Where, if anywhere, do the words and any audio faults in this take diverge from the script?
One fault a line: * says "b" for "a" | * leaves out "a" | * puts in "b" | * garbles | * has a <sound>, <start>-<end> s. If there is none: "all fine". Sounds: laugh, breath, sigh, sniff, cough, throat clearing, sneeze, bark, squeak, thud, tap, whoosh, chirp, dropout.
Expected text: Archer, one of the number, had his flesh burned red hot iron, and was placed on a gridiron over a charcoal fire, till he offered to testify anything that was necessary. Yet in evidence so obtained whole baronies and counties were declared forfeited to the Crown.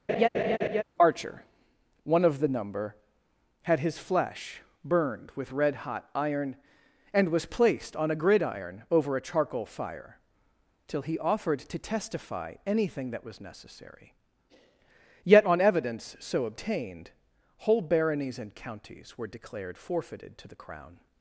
* has a laugh, 0.1-0.8 s
* puts in "with"
* says "on" for "in"